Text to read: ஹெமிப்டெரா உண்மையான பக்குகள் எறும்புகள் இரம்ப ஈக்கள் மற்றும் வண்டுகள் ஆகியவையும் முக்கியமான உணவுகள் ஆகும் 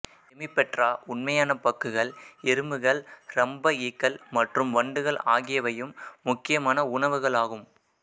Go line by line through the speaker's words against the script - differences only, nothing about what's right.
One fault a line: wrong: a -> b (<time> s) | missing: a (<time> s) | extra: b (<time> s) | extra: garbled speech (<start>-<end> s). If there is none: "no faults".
no faults